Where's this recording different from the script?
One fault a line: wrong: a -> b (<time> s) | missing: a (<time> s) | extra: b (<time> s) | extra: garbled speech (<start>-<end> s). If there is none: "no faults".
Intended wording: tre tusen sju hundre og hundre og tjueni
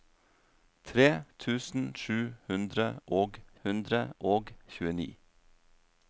no faults